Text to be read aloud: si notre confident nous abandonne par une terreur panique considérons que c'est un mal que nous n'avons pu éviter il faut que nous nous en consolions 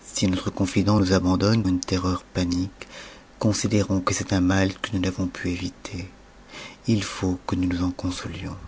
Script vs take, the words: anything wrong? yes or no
yes